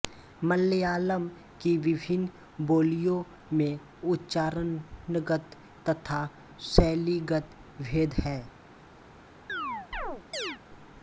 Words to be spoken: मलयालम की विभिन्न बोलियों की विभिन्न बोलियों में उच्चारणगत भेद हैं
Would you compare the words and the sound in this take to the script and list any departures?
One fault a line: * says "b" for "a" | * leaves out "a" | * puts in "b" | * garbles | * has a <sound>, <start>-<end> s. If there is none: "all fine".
* says "में उच्चारणगत तथा शैलीगत" for "की विभिन्न बोलियों में उच्चारणगत"
* has a chirp, 9.5-10.6 s